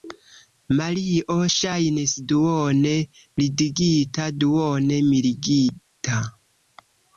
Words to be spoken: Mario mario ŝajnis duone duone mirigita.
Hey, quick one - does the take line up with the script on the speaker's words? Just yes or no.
no